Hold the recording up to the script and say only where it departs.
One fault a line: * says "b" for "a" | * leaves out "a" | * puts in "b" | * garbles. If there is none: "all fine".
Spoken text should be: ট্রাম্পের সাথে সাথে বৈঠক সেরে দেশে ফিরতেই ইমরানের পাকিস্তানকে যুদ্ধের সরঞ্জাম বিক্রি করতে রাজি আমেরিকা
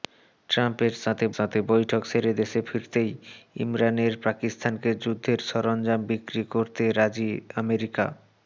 all fine